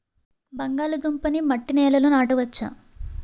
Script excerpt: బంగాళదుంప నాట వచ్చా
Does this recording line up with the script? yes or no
no